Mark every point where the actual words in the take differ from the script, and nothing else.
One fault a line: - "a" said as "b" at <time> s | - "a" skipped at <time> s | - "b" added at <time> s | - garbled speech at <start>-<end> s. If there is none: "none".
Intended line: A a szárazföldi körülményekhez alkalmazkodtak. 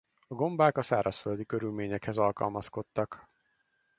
- "gombák" added at 0.3 s